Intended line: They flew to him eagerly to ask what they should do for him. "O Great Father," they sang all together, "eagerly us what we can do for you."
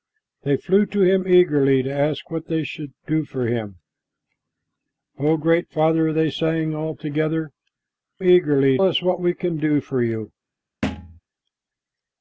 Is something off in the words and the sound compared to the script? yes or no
yes